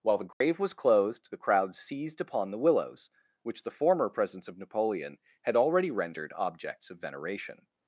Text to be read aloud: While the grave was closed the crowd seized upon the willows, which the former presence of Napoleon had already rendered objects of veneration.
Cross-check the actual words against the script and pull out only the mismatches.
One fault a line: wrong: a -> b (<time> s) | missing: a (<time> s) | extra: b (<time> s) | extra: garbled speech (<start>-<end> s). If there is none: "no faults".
no faults